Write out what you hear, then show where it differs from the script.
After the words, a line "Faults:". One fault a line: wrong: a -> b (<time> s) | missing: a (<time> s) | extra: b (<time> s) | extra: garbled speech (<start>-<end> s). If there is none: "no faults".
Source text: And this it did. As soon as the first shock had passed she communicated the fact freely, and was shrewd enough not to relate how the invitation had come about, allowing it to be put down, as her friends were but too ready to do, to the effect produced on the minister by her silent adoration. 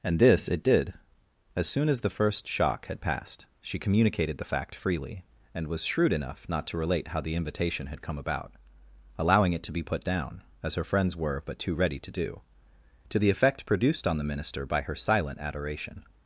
And this it did. As soon as the first shock had passed she communicated the fact freely, and was shrewd enough not to relate how the invitation had come about, allowing it to be put down, as her friends were but too ready to do, to the effect produced on the minister by her silent adoration.
Faults:
no faults